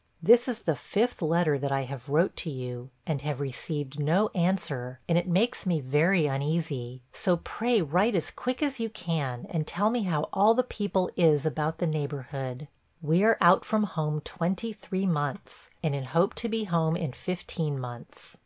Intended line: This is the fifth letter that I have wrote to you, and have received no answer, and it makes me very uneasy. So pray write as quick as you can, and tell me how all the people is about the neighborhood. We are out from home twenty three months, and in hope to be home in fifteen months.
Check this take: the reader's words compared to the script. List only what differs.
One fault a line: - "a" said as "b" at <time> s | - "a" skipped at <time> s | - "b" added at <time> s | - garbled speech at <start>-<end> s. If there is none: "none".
none